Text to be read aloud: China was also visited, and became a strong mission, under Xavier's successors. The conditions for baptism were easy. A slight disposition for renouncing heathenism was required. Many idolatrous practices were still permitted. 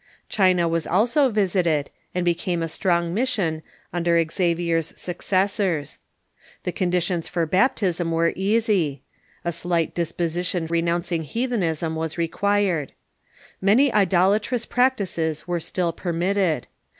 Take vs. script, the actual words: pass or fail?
fail